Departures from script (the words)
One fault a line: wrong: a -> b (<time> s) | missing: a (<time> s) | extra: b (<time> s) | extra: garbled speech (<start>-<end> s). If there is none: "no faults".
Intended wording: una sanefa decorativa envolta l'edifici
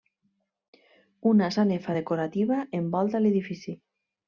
no faults